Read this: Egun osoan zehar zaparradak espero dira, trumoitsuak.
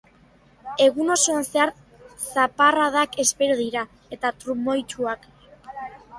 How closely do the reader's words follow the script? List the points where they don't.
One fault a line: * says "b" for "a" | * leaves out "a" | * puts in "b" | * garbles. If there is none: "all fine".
* puts in "eta"